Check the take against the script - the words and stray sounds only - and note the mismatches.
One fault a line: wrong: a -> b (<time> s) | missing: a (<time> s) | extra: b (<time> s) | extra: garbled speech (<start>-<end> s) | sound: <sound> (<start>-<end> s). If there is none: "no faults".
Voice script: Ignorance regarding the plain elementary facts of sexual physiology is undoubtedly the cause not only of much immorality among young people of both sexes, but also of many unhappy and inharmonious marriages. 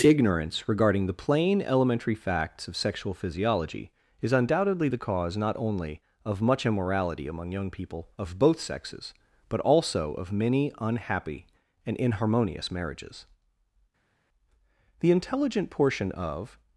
extra: The intelligent portion of (15.0 s)